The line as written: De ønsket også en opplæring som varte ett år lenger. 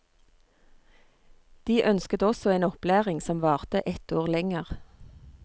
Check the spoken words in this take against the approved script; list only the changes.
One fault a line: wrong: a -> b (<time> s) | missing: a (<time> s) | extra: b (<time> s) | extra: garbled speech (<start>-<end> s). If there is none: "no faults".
no faults